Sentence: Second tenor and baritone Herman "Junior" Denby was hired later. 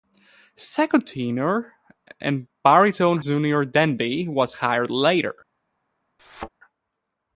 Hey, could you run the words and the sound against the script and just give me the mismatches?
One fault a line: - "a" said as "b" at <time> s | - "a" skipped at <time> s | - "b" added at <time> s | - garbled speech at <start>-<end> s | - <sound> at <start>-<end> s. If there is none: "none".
- "Herman" skipped at 3.2 s
- thud at 6.2-6.5 s